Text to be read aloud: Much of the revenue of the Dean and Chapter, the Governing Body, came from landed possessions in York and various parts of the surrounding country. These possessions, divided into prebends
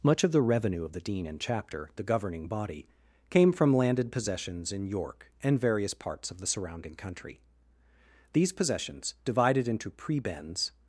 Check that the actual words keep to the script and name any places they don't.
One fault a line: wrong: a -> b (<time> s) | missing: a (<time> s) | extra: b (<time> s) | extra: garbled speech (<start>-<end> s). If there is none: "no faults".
no faults